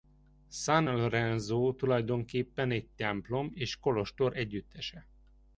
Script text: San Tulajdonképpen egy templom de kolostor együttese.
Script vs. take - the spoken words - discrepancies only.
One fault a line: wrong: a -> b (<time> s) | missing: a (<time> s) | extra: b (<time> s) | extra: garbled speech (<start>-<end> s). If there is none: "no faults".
extra: Lorenzo (0.8 s)
wrong: de -> és (3.5 s)